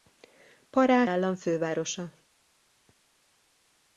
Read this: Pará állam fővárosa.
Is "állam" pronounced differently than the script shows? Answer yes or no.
no